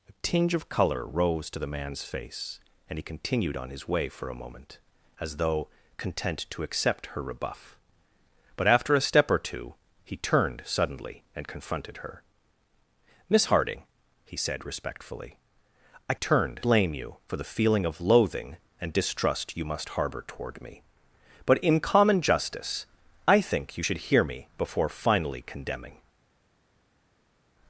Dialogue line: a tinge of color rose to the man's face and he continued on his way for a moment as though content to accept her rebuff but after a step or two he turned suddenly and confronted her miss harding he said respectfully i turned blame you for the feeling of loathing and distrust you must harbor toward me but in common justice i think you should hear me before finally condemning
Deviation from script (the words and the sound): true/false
false